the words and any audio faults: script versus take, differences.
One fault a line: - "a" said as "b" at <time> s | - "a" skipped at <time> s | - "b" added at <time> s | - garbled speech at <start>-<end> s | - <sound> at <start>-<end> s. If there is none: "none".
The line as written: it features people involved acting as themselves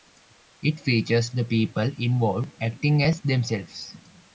- "the" added at 1.3 s